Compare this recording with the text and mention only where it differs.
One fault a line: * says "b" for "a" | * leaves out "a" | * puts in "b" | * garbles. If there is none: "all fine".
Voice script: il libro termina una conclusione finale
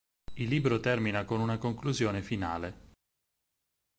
* puts in "con"